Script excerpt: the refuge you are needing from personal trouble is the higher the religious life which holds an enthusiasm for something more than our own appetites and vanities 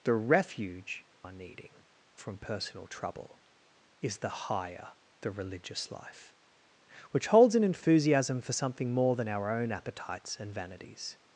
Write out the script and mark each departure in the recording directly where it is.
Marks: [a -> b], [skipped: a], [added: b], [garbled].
the refuge [skipped: you] are needing from personal trouble is the higher the religious life which holds an enthusiasm for something more than our own appetites and vanities